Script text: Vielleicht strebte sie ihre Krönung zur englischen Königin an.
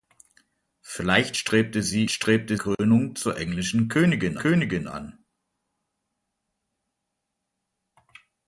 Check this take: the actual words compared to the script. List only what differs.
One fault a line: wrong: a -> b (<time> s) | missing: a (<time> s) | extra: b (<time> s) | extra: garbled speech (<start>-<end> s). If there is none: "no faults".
wrong: ihre -> strebte (2.1 s)
extra: Königin (4.4 s)